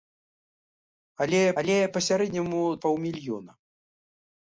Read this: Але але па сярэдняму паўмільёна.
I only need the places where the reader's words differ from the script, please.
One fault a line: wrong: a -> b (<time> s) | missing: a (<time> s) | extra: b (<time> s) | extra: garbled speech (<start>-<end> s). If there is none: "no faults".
no faults